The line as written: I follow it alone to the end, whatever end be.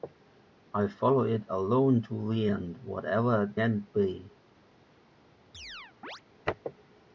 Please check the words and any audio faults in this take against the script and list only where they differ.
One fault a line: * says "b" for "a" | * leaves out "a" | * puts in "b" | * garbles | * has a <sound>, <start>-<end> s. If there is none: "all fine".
* has a chirp, 5.5-6.2 s